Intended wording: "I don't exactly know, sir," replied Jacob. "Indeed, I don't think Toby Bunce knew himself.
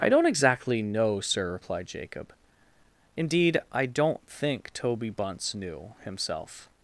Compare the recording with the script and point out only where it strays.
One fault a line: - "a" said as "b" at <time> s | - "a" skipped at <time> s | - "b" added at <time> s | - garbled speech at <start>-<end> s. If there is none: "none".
none